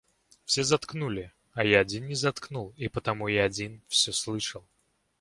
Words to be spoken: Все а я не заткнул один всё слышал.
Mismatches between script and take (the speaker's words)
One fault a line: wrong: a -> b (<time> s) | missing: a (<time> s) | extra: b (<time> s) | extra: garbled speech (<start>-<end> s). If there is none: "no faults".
extra: заткнули (0.6 s)
extra: один (1.8 s)
extra: и потому я (2.8 s)